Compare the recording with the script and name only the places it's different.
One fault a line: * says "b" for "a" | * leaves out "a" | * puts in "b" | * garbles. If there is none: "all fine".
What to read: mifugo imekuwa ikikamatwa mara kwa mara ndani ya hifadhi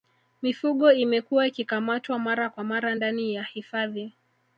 all fine